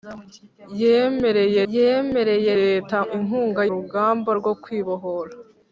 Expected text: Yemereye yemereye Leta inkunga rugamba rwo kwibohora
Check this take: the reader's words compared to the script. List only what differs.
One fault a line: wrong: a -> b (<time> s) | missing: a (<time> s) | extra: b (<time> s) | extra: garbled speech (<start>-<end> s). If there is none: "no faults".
no faults